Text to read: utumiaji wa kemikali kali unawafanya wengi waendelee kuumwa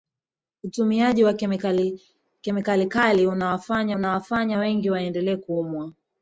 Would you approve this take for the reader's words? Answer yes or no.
no